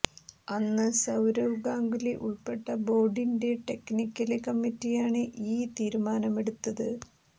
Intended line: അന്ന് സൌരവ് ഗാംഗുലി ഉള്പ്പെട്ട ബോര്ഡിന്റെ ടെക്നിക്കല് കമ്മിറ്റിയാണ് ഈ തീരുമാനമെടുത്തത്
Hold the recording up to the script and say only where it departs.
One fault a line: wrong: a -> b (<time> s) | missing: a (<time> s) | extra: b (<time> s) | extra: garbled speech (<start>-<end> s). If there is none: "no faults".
no faults